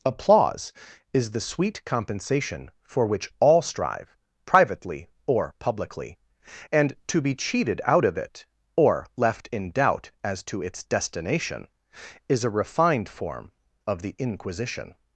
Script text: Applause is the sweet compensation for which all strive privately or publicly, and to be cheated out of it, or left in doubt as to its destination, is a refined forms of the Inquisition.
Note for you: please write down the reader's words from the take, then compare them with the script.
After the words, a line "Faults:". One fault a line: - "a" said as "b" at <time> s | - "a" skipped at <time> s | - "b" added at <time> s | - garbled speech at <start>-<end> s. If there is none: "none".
Applause is the sweet compensation for which all strive privately or publicly, and to be cheated out of it, or left in doubt as to its destination, is a refined form of the Inquisition.
Faults:
- "forms" said as "form" at 13.1 s